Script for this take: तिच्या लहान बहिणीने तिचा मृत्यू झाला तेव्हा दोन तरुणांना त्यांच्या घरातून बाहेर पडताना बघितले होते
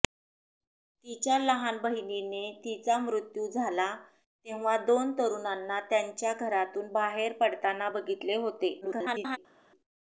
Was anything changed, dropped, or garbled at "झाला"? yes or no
no